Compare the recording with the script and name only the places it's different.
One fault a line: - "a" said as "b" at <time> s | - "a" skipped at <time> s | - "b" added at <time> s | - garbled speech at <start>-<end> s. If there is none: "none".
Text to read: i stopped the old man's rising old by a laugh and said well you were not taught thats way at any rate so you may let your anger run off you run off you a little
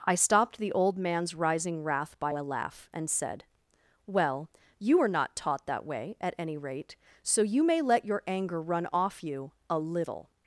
- "old" said as "wrath" at 1.8 s
- "thats" said as "that" at 5.7 s
- "run off you" skipped at 9.5 s